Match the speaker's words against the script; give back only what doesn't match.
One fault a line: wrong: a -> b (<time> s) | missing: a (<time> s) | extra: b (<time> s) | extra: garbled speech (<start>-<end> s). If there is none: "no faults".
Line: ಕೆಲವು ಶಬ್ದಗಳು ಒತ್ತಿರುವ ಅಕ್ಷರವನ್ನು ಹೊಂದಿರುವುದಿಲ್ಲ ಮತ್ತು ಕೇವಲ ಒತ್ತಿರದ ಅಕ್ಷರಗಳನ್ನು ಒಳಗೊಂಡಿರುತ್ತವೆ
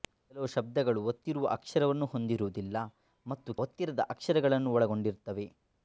missing: ಕೇವಲ (3.5 s)